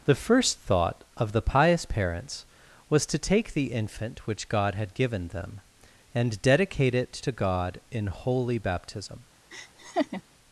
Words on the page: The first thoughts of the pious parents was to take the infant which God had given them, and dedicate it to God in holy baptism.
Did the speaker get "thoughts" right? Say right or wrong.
wrong